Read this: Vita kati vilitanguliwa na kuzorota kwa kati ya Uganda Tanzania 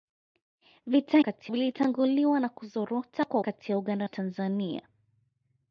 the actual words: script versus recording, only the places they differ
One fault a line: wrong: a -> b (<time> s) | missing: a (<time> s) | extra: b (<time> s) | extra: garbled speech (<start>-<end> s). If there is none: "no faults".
no faults